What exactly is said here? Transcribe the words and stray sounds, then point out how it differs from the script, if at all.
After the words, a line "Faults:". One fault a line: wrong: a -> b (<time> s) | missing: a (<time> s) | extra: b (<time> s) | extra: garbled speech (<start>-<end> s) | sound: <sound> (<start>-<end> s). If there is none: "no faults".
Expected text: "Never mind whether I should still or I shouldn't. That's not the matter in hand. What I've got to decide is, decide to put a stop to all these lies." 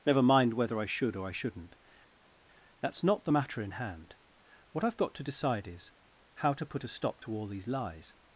"Never mind whether I should or I shouldn't. That's not the matter in hand. What I've got to decide is, how to put a stop to all these lies."
Faults:
missing: still (1.1 s)
wrong: decide -> how (6.3 s)